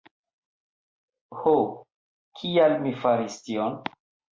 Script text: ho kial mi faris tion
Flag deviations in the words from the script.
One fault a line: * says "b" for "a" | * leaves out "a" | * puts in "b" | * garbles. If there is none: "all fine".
all fine